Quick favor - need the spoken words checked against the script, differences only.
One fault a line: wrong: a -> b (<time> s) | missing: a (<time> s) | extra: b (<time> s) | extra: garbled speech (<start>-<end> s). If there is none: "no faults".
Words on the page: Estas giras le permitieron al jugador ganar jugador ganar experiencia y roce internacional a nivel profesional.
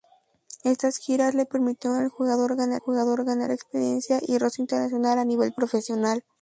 no faults